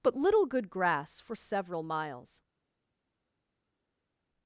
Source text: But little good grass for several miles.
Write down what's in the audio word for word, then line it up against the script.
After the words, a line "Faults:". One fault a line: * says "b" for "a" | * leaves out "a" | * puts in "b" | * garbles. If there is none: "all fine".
But little good grass for several miles.
Faults:
all fine